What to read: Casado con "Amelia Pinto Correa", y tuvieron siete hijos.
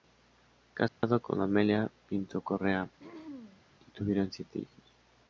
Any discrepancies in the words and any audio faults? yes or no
yes